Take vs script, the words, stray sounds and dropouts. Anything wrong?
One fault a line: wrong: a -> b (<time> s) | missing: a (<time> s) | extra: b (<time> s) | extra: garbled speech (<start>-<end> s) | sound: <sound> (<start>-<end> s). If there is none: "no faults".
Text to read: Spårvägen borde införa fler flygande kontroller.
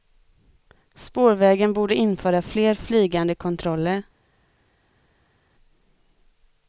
no faults